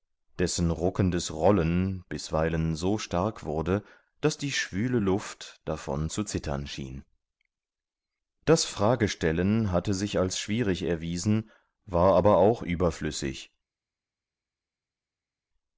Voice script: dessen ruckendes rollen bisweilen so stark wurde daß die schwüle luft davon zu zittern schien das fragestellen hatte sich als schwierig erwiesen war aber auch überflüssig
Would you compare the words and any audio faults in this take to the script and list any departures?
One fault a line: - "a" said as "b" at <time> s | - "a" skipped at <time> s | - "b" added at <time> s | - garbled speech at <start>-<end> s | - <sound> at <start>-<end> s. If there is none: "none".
none